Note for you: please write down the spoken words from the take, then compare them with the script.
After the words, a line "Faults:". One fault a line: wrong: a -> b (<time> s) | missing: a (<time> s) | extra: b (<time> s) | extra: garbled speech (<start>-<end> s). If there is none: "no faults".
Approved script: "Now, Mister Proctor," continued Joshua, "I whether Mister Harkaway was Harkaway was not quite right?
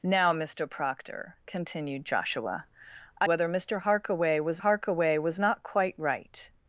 "Now, Mister Proctor," continued Joshua, "I whether Mister Harkaway was Harkaway was not quite right?
Faults:
no faults